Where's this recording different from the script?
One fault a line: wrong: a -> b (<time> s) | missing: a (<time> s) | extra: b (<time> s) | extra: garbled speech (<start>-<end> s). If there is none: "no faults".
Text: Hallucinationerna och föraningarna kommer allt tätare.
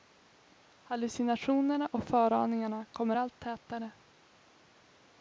no faults